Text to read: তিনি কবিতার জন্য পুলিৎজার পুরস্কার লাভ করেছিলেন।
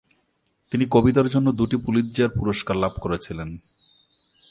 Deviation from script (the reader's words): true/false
true